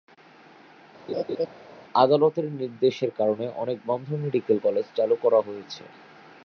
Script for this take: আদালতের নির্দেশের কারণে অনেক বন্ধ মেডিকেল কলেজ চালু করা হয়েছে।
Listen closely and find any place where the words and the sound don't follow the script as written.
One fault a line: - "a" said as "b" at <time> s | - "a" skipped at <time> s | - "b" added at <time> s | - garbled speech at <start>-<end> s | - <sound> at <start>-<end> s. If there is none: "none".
- laugh at 1.1-1.5 s